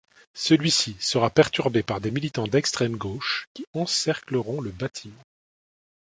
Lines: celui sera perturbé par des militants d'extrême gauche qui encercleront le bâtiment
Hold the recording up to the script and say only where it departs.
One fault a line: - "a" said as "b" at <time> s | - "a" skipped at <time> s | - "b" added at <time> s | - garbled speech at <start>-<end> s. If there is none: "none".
- "ci" added at 0.7 s